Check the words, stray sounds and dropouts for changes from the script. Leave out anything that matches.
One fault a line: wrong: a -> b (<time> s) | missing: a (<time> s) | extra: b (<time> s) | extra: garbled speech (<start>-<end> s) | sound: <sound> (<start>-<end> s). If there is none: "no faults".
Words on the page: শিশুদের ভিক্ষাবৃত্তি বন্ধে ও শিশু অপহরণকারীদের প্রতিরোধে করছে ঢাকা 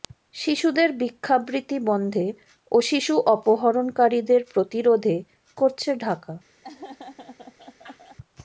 sound: laugh (6.6-8.2 s)